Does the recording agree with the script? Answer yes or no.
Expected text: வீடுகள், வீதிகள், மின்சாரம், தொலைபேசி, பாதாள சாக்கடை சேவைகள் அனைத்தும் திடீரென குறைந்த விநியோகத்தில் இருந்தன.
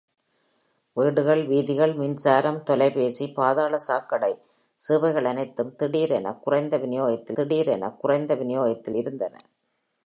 no